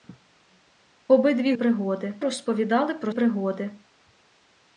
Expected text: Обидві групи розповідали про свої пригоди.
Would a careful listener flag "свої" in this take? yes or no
yes